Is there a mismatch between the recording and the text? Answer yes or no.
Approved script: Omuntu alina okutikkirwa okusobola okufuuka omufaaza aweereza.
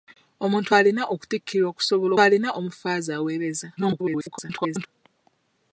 yes